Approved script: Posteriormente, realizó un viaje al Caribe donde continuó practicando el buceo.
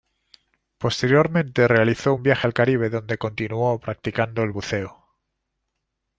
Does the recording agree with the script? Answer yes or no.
yes